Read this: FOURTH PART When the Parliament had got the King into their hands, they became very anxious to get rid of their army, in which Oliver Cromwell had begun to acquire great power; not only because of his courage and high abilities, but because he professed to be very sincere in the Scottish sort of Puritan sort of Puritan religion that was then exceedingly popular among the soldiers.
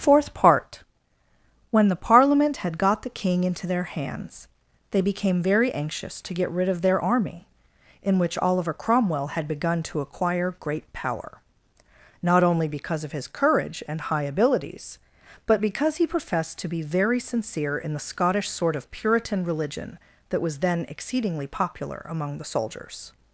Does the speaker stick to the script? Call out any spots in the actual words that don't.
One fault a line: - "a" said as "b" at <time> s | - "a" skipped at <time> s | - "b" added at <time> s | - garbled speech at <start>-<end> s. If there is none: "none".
- "sort of Puritan" skipped at 19.4 s